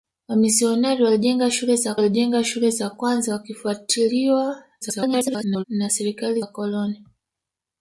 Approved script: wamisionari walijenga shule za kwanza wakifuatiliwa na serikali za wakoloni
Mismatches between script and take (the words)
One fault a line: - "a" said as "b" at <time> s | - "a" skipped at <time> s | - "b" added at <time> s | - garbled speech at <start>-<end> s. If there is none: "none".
- "walijenga shule za" added at 1.9 s
- garbled speech at 4.8-5.6 s
- "za" skipped at 6.4 s